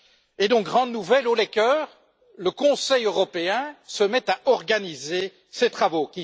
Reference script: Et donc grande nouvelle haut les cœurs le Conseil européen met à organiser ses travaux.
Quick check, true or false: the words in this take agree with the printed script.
false